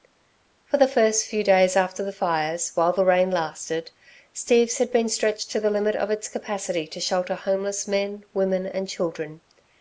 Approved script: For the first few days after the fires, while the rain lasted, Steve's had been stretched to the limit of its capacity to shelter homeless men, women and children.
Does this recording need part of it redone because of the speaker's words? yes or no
no